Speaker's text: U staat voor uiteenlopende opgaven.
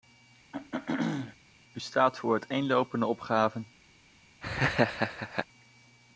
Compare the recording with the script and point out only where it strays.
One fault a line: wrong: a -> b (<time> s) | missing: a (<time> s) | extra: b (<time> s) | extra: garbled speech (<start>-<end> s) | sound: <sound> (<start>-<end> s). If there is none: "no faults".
sound: throat clearing (0.5-1.4 s)
sound: laugh (4.4-5.5 s)